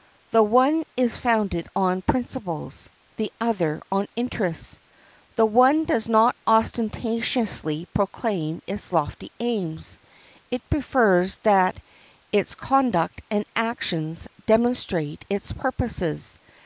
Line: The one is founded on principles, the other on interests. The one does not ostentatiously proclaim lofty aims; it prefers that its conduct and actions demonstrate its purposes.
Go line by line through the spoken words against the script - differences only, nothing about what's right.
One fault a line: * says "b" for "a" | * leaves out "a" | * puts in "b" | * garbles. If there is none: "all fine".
* puts in "its"